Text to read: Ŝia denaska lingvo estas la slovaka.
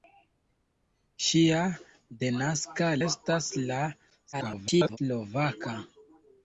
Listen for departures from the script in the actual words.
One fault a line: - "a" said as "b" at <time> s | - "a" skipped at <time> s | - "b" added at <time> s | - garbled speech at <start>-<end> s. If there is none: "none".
- "lingvo" skipped at 2.9 s
- garbled speech at 4.3-5.0 s